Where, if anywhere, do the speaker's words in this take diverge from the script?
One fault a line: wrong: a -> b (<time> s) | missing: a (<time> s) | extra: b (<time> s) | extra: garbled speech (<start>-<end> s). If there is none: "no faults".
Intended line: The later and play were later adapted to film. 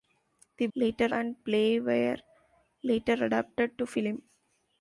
no faults